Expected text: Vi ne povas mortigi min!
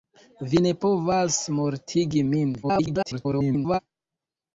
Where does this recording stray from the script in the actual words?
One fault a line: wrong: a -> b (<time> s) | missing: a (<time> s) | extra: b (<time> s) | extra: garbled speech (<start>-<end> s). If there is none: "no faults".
extra: garbled speech (2.6-3.8 s)